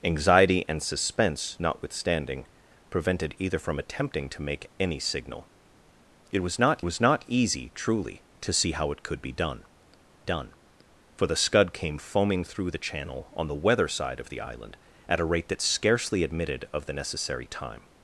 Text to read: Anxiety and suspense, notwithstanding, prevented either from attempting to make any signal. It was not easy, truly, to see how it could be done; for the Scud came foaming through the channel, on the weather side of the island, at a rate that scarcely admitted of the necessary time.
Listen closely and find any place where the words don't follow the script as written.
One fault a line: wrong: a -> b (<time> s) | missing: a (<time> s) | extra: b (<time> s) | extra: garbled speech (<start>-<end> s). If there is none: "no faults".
extra: was not (6.8 s)
extra: done (10.2 s)